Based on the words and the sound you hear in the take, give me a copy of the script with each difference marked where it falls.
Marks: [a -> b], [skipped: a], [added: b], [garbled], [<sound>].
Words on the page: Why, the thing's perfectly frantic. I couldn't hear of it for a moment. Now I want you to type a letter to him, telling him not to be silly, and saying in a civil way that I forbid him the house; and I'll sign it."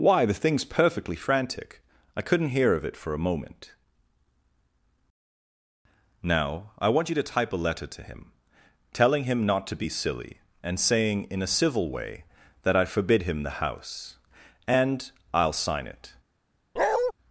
Why, the thing's perfectly frantic. I couldn't hear of it for a moment. Now I want you to type a letter to him, telling him not to be silly, and saying in a civil way that I forbid him the house; and I'll sign it." [bark]